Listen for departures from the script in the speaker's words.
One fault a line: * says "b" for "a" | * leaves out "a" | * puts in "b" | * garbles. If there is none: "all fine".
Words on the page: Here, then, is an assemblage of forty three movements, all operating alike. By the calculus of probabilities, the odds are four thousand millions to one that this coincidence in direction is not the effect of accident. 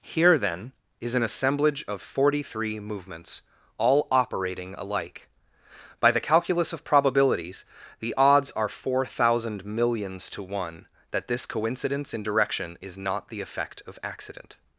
all fine